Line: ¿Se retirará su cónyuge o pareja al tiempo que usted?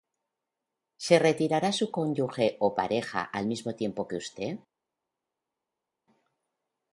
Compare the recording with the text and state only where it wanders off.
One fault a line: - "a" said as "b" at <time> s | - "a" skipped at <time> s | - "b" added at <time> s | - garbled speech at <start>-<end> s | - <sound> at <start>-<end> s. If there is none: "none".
- "mismo" added at 3.5 s